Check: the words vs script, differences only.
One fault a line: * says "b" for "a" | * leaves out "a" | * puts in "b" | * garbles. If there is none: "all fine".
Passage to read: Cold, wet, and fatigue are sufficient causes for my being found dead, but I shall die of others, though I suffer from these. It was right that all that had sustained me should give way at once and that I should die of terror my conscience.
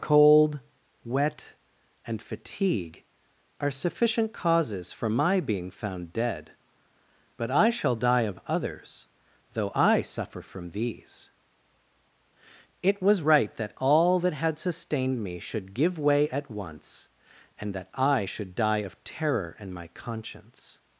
* puts in "and"